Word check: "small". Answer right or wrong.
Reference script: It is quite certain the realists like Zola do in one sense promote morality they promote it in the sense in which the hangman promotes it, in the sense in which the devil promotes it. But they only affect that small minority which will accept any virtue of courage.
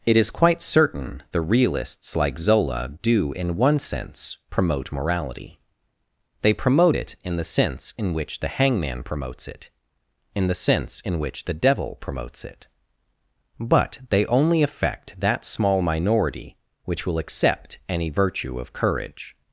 right